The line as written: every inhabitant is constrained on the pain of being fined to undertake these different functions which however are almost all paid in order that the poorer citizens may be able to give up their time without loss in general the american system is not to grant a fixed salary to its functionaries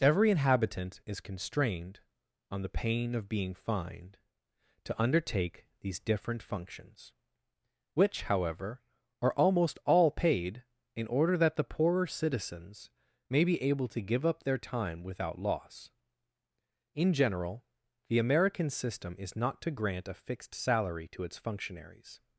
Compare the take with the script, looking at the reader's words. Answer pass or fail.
pass